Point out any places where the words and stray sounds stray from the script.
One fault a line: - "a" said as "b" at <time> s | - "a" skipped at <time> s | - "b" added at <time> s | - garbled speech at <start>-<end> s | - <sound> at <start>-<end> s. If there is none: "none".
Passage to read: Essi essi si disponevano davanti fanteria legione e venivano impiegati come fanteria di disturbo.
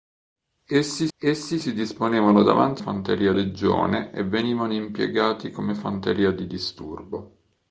none